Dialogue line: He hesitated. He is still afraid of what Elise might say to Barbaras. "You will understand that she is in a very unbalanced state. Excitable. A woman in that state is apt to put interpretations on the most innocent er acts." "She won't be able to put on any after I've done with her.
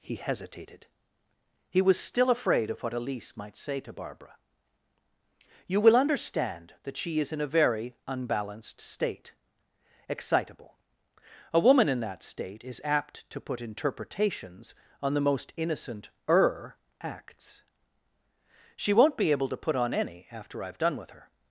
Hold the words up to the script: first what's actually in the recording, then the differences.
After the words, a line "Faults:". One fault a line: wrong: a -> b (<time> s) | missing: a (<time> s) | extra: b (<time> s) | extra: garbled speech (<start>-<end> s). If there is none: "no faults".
He hesitated. He was still afraid of what Elise might say to Barbara. "You will understand that she is in a very unbalanced state. Excitable. A woman in that state is apt to put interpretations on the most innocent er acts." "She won't be able to put on any after I've done with her.
Faults:
wrong: is -> was (1.8 s)
wrong: Barbaras -> Barbara (3.9 s)